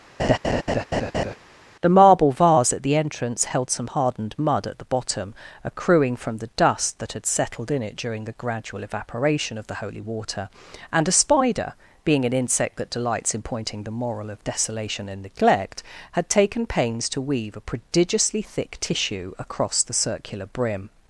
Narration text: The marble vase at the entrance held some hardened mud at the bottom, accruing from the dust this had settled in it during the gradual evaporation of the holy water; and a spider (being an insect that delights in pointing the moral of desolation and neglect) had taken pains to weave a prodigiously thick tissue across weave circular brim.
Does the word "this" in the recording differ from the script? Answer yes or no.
yes